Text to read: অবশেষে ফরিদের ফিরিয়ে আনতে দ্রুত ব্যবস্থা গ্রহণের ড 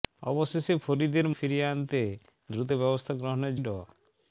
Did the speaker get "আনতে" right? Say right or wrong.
right